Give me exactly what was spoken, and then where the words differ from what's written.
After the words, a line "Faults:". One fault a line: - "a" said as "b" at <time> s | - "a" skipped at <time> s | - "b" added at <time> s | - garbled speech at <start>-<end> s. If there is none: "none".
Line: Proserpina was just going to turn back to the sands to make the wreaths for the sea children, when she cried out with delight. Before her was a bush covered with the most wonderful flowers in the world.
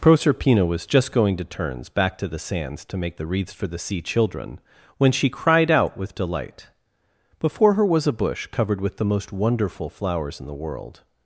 Proserpina was just going to turns back to the sands to make the wreaths for the sea children, when she cried out with delight. Before her was a bush covered with the most wonderful flowers in the world.
Faults:
- "turn" said as "turns" at 1.4 s